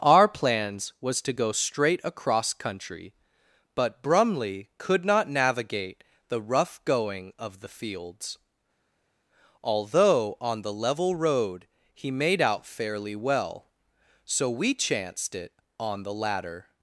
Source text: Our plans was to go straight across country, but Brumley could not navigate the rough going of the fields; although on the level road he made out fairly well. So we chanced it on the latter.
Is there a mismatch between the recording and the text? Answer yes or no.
no